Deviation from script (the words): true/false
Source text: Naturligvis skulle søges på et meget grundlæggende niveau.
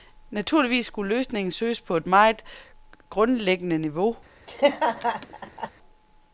true